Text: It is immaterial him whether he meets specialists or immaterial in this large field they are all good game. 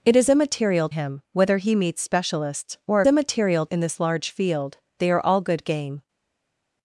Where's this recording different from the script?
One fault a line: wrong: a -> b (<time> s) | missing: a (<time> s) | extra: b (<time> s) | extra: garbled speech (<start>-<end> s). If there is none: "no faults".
no faults